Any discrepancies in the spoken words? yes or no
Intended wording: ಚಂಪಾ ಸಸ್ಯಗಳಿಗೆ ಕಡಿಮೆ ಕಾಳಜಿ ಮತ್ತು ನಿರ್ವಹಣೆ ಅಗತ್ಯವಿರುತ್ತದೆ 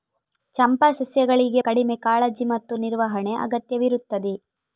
no